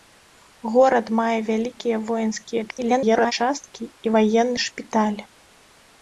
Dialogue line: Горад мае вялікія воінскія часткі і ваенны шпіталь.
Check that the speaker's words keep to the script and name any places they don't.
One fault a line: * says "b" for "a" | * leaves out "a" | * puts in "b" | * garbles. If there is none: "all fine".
* garbles